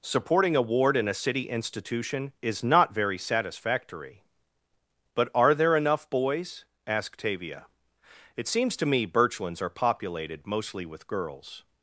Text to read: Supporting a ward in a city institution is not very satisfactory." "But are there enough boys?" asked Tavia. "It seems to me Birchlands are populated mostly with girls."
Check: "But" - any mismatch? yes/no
no